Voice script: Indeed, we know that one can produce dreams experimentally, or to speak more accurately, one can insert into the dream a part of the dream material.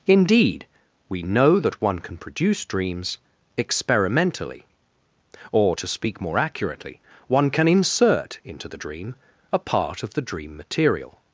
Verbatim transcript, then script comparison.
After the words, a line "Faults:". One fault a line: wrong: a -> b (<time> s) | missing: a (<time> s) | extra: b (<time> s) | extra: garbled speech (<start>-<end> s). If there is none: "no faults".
Indeed, we know that one can produce dreams experimentally, or to speak more accurately, one can insert into the dream a part of the dream material.
Faults:
no faults